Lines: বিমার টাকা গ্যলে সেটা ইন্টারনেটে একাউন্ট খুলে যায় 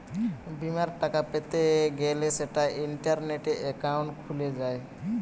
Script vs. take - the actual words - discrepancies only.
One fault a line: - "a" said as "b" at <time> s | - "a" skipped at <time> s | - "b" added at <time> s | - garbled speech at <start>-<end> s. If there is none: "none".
- "পেতে" added at 1.3 s